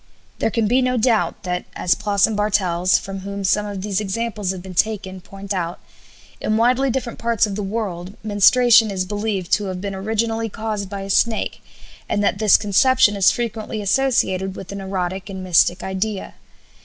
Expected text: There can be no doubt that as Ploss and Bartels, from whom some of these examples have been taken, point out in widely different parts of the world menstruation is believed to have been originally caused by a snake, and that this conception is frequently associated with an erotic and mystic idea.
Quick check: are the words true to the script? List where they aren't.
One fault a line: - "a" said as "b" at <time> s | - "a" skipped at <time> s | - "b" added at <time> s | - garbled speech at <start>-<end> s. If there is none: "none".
none